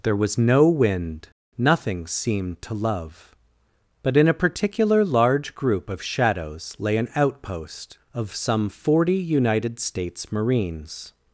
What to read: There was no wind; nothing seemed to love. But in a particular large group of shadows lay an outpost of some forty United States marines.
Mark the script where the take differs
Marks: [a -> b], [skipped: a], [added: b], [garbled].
There was no wind; nothing seemed to love. But in a particular large group of shadows lay an outpost of some forty United States marines.